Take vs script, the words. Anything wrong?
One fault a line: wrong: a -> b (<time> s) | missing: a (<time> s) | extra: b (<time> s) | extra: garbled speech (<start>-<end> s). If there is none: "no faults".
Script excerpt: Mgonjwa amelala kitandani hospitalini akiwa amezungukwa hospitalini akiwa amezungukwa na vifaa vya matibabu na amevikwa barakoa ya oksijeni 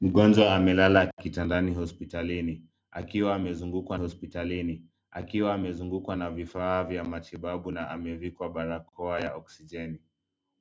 no faults